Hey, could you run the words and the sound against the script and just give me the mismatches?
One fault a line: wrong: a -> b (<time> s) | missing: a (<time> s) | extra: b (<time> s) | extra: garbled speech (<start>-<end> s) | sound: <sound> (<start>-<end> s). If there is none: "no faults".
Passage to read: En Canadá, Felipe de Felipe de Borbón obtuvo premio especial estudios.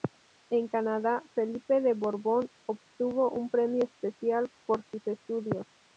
missing: Felipe de (1.9 s)
extra: un (3.3 s)
extra: por sus (4.6 s)